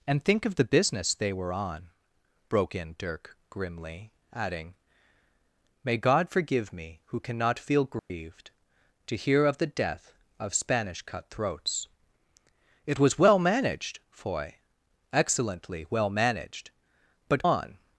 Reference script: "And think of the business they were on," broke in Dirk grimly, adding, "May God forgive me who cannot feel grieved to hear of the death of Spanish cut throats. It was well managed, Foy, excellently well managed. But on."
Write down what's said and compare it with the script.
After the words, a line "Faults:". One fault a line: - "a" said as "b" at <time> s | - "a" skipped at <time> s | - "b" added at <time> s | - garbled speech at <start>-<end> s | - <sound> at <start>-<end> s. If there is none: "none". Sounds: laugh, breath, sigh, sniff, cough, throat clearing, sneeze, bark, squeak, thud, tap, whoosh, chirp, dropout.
"And think of the business they were on," broke in Dirk grimly, adding, "May God forgive me who cannot feel grieved to hear of the death of Spanish cut throats. It was well managed, Foy, excellently well managed. But on."
Faults:
- dropout at 8.0-8.1 s